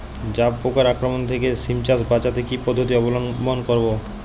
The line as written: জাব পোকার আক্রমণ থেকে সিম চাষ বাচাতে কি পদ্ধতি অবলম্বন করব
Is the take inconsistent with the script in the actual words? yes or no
no